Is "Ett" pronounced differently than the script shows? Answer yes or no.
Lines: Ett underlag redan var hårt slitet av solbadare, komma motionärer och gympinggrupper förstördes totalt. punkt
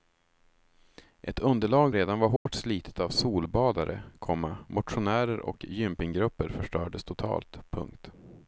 no